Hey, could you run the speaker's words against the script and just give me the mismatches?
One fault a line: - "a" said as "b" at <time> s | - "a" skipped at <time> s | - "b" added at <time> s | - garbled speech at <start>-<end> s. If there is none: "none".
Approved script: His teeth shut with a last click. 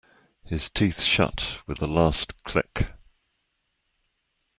none